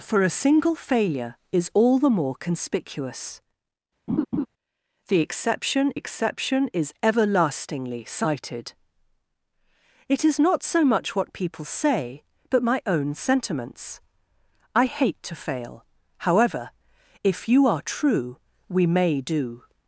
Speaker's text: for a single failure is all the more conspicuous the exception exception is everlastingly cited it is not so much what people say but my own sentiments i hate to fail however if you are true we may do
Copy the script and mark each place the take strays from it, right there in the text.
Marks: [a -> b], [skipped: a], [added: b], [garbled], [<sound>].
for a single failure is all the more conspicuous [laugh] the exception exception is everlastingly cited it is not so much what people say but my own sentiments i hate to fail however if you are true we may do